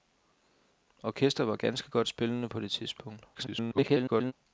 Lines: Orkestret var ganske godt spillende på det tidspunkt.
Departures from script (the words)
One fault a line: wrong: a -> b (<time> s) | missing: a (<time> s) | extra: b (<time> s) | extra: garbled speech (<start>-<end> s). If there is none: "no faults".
extra: garbled speech (3.3-4.3 s)